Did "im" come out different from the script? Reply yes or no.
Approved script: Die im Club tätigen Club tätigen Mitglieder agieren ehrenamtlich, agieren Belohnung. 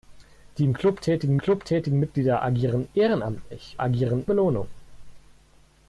no